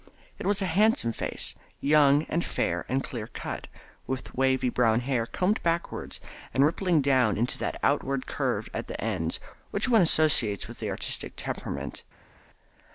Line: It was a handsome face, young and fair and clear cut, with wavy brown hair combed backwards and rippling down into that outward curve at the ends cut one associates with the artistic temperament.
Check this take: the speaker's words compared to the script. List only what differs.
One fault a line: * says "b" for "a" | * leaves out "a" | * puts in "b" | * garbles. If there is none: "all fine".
* says "which" for "cut"